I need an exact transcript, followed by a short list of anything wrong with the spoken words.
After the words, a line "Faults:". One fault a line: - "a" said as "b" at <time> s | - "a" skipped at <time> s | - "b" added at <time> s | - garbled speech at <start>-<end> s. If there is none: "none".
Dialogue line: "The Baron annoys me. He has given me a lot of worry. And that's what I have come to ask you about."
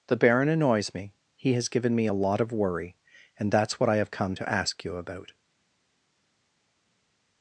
"The Baron annoys me. He has given me a lot of worry. And that's what I have come to ask you about."
Faults:
none